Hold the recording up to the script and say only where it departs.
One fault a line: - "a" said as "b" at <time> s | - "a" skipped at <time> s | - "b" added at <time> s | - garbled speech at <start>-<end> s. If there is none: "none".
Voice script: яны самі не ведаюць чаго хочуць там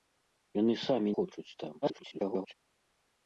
- "не ведаюць чаго" skipped at 1.1 s
- garbled speech at 1.8-2.5 s